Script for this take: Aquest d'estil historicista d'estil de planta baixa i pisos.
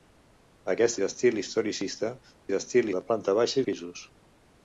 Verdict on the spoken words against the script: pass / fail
pass